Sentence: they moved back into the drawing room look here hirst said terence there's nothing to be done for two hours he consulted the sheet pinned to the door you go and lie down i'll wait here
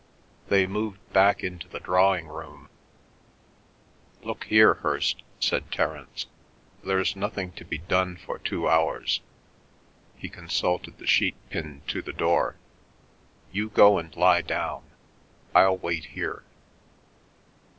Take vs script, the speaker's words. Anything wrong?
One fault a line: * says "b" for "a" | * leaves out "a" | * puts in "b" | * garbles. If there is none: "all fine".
all fine